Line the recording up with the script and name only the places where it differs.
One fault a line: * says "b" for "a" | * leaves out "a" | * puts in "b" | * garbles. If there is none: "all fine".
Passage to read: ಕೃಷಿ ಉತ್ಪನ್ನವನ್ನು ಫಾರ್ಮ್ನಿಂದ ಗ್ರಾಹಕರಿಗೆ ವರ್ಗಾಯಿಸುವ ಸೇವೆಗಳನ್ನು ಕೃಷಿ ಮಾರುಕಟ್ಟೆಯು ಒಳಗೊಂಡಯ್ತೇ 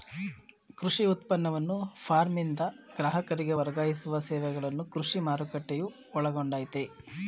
all fine